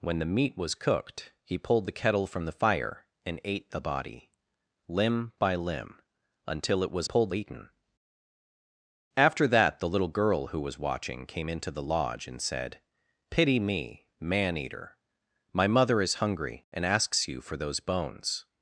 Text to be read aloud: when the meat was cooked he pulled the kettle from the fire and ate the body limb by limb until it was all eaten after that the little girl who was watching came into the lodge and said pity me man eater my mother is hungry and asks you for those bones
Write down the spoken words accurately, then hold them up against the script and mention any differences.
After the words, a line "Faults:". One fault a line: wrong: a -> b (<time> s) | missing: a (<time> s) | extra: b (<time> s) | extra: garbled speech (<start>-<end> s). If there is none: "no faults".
when the meat was cooked he pulled the kettle from the fire and ate the body limb by limb until it was pulled eaten after that the little girl who was watching came into the lodge and said pity me man eater my mother is hungry and asks you for those bones
Faults:
wrong: all -> pulled (7.0 s)